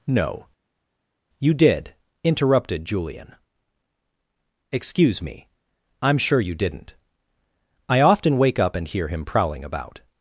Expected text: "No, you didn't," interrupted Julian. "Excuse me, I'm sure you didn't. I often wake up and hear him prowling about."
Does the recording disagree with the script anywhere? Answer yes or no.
yes